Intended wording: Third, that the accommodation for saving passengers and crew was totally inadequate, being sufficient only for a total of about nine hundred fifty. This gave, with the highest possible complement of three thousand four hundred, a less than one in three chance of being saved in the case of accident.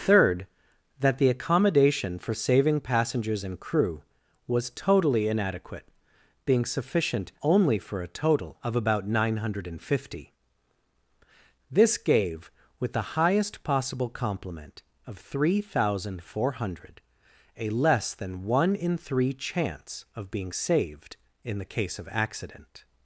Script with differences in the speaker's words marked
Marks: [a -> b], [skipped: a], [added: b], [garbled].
Third, that the accommodation for saving passengers and crew was totally inadequate, being sufficient only for a total of about nine hundred fifty. This gave, with the highest possible complement of three thousand four hundred, a less than one in three chance of being saved in the case of accident.